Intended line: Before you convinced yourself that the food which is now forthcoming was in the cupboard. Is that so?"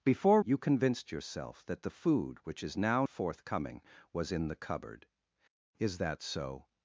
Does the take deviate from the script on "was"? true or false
false